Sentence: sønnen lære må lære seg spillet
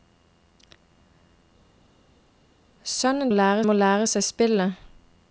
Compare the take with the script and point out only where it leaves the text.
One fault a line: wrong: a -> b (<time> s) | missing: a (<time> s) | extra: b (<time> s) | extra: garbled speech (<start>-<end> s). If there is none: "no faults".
no faults